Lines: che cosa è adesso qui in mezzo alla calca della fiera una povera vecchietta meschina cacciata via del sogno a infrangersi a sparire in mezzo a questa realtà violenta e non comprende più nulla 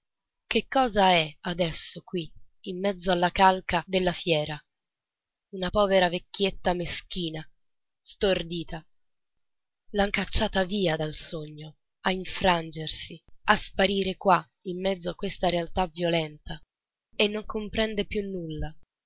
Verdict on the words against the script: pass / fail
fail